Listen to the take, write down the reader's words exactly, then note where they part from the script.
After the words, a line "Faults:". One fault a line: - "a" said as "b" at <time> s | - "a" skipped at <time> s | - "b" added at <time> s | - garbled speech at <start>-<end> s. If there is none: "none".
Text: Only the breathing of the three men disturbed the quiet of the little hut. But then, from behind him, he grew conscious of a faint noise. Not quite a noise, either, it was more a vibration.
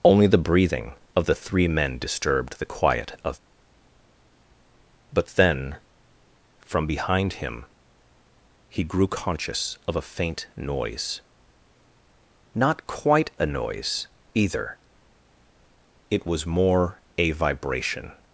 Only the breathing of the three men disturbed the quiet of. But then, from behind him, he grew conscious of a faint noise. Not quite a noise, either, it was more a vibration.
Faults:
- "the little hut" skipped at 3.4 s